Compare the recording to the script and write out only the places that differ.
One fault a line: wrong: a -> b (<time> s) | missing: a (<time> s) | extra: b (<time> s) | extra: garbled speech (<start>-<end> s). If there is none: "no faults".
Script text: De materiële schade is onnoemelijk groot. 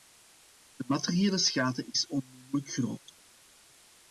no faults